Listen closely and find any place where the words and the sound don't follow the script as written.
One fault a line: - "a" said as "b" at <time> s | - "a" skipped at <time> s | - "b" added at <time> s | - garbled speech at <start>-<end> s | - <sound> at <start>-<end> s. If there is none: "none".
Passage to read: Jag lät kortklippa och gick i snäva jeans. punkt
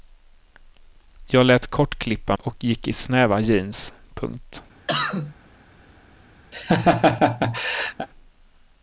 - cough at 4.9-5.3 s
- laugh at 6.5-8.1 s